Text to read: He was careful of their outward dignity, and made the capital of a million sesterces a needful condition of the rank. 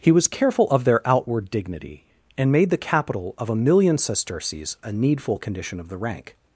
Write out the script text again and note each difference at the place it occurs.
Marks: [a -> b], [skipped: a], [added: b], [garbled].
He was careful of their outward dignity, and made the capital of a million sesterces a needful condition of the rank.